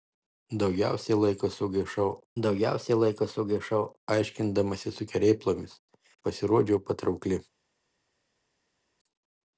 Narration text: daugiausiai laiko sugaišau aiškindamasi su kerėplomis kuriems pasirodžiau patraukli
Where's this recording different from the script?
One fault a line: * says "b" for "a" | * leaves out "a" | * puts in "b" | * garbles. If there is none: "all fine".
* puts in "daugiausiai laiko sugaišau"
* leaves out "kuriems"